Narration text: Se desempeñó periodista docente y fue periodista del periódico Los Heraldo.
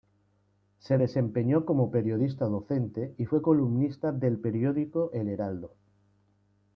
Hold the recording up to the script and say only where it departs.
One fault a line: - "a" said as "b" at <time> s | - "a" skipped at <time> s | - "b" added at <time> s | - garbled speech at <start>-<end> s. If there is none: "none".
- "como" added at 1.7 s
- "periodista" said as "columnista" at 3.4 s
- "Los" said as "El" at 5.1 s